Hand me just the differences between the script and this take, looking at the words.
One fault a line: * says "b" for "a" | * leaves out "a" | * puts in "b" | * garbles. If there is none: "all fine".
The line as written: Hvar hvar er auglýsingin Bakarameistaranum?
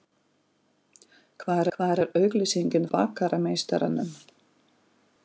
all fine